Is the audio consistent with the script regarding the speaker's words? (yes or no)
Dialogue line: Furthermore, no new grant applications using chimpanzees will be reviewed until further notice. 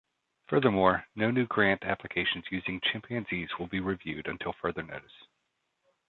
yes